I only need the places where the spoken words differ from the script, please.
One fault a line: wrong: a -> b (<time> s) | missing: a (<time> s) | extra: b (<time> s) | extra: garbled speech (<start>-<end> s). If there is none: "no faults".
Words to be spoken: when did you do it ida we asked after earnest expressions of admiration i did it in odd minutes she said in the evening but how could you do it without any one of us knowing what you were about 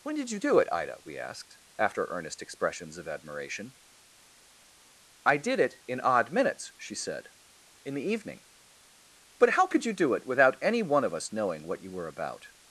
no faults